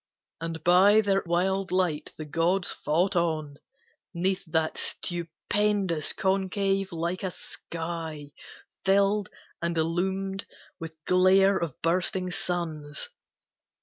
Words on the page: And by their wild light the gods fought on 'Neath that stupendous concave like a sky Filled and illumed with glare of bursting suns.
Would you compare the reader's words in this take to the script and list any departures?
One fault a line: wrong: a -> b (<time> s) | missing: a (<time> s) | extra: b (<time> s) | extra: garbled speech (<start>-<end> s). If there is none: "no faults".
no faults